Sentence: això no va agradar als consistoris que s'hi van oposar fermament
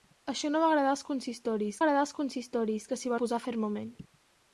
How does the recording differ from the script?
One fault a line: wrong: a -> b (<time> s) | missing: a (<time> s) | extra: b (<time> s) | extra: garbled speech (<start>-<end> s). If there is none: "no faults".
extra: agradar als consistoris (1.8 s)
missing: van (3.2 s)